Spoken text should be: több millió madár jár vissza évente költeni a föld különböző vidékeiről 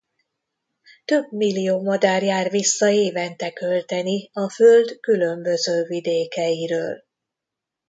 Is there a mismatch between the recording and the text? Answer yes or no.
no